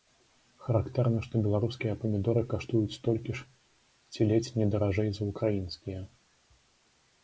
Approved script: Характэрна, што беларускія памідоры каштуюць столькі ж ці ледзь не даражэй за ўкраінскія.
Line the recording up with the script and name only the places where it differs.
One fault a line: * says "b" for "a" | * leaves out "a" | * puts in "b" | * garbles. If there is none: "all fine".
all fine